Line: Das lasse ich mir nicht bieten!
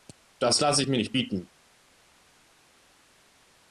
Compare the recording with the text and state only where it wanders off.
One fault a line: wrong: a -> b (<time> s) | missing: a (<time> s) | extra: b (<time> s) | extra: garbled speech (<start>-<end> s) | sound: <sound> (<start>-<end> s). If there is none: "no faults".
no faults